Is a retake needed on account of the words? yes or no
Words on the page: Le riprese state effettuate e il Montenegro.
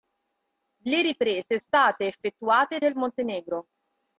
no